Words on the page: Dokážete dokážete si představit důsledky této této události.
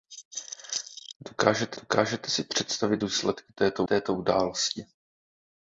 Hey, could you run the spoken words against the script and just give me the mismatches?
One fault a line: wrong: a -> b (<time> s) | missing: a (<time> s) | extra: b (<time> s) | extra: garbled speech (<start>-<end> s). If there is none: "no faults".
no faults